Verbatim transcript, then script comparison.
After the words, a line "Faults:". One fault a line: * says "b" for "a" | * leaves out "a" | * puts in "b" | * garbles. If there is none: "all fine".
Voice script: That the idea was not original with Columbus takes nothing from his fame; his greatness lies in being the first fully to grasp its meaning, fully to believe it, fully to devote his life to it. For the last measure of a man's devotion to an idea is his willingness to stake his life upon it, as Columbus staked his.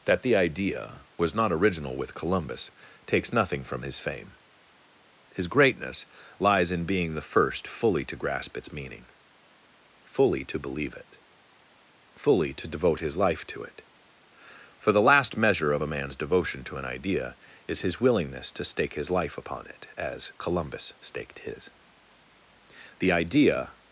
That the idea was not original with Columbus takes nothing from his fame; his greatness lies in being the first fully to grasp its meaning, fully to believe it, fully to devote his life to it. For the last measure of a man's devotion to an idea is his willingness to stake his life upon it, as Columbus staked his. The idea
Faults:
* puts in "The idea"